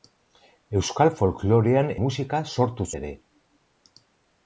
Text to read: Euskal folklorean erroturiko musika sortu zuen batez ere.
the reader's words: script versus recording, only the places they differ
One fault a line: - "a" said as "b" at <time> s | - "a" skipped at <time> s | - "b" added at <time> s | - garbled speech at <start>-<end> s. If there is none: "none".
- "erroturiko" skipped at 1.9 s
- "zuen batez" skipped at 2.9 s